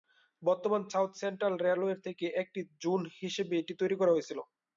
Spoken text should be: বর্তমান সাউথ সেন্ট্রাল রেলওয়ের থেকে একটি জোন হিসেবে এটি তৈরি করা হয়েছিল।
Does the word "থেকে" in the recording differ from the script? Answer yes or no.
no